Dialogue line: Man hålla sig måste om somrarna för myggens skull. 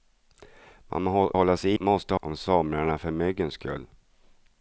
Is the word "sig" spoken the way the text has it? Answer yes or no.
yes